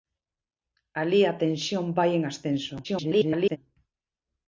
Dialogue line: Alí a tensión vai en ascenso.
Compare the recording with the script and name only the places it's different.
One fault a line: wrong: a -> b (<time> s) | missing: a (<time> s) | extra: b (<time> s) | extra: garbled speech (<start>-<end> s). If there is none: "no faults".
extra: garbled speech (2.8-3.6 s)